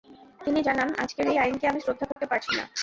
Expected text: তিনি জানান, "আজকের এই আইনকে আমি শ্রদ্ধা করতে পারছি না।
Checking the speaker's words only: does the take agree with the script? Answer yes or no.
yes